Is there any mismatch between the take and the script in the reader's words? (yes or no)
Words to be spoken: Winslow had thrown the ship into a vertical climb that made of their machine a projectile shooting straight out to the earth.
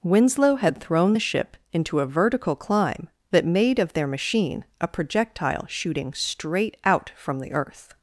yes